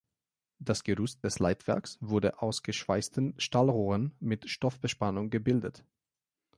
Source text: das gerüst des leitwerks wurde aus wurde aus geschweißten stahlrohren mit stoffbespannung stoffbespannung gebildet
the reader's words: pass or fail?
fail